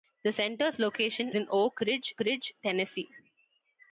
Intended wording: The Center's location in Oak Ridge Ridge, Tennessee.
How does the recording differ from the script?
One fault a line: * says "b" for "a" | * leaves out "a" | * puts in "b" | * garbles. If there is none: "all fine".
all fine